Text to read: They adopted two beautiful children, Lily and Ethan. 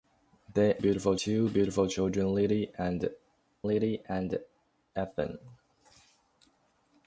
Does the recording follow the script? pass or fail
fail